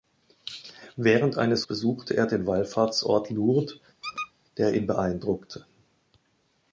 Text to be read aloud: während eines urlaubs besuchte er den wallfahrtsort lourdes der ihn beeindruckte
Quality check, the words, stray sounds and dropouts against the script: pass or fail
fail